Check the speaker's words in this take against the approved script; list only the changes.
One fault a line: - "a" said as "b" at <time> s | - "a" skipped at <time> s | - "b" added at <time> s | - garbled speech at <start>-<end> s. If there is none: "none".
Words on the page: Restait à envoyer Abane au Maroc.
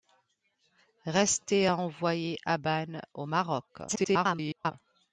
- garbled speech at 3.9-4.7 s